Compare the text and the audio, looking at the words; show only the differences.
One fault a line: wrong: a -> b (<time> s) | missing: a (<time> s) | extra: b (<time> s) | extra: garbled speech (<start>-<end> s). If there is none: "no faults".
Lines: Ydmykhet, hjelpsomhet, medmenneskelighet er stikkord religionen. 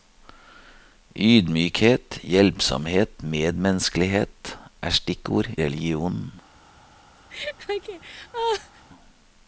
no faults